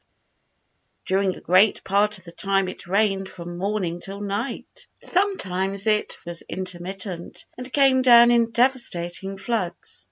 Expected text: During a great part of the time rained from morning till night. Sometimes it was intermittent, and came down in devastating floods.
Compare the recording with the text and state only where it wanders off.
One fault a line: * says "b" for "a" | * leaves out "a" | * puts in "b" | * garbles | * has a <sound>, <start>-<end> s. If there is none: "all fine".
* puts in "it"